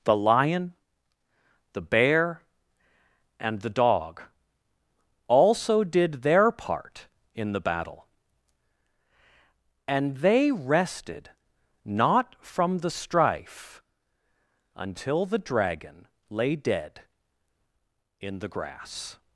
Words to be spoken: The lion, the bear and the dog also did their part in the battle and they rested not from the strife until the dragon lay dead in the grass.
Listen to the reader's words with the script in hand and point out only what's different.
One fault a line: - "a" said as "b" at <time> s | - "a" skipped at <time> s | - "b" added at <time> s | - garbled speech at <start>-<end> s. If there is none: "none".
none